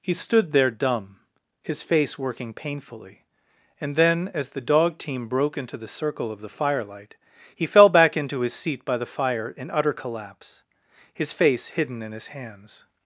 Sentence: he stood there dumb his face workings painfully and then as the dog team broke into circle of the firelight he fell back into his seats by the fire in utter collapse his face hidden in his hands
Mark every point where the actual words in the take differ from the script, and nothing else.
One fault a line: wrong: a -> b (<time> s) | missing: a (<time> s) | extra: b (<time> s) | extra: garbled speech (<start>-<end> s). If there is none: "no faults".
wrong: workings -> working (2.2 s)
extra: the (5.8 s)
wrong: seats -> seat (8.5 s)